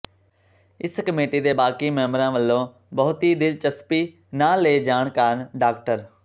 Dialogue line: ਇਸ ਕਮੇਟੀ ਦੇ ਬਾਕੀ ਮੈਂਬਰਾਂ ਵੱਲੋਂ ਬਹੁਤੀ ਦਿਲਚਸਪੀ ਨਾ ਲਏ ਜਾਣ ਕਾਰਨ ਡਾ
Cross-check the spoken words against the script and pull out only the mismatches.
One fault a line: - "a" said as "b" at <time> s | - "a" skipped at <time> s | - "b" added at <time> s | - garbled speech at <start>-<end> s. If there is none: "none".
none